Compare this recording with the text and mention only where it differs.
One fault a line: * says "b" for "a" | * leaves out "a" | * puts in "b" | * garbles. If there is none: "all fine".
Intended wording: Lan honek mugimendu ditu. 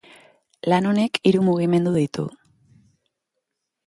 * puts in "hiru"